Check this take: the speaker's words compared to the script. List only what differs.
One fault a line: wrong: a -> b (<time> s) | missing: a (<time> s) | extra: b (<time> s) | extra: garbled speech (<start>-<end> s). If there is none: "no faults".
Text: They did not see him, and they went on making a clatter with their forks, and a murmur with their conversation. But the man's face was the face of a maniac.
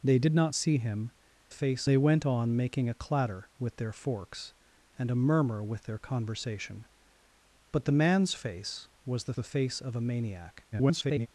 wrong: and -> face (1.5 s)
extra: the (9.3 s)
extra: garbled speech (10.7-11.3 s)